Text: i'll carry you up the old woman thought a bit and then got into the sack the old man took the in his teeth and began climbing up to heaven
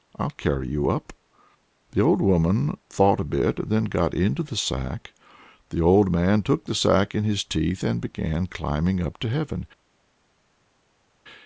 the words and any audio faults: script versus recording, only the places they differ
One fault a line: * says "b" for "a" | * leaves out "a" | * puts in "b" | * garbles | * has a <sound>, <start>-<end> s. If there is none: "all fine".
* puts in "sack"